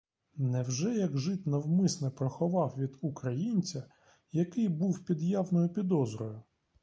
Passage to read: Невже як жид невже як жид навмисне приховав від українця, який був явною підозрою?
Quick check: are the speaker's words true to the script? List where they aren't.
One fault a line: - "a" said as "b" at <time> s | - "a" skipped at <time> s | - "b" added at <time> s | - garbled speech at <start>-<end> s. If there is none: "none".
- "невже як жид" skipped at 1.5 s
- "під" added at 5.0 s